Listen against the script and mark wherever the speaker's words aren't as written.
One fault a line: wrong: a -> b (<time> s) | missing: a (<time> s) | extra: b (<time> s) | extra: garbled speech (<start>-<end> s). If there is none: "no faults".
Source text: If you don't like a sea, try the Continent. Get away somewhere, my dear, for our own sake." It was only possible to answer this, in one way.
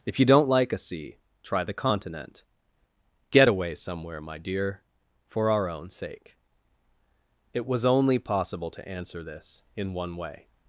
no faults